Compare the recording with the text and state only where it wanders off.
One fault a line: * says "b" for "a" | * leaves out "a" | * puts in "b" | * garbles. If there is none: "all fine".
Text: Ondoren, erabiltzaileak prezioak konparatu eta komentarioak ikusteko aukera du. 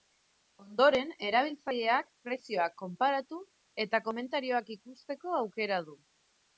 all fine